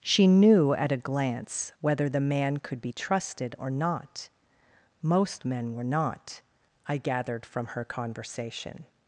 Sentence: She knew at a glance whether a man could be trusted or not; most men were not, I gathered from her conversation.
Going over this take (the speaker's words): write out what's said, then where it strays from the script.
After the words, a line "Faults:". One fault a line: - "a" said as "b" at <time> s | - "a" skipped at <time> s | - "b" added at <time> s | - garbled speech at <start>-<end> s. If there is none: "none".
She knew at a glance whether the man could be trusted or not; most men were not, I gathered from her conversation.
Faults:
- "a" said as "the" at 2.1 s